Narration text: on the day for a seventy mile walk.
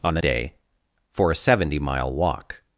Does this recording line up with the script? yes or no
yes